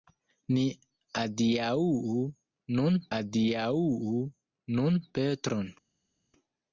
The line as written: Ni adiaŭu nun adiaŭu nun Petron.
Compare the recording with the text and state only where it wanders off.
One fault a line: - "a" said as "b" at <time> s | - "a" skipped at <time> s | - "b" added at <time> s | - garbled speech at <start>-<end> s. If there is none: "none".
none